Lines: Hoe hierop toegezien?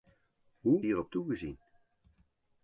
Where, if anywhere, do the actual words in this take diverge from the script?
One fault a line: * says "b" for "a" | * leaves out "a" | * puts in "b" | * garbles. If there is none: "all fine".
all fine